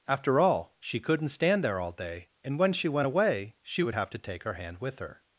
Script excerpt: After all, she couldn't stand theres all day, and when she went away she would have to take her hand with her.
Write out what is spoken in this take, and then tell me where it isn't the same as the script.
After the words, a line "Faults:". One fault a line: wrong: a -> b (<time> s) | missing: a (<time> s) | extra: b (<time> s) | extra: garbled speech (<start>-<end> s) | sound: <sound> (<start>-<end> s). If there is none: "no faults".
After all, she couldn't stand there all day, and when she went away she would have to take her hand with her.
Faults:
wrong: theres -> there (1.6 s)